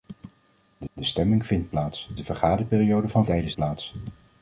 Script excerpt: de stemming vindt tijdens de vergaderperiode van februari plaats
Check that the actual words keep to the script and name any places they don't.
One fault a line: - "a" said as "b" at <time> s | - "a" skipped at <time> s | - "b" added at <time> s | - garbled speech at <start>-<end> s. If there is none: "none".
- "de" added at 0.9 s
- "tijdens" said as "plaats" at 1.7 s
- "februari" said as "tijdens" at 3.2 s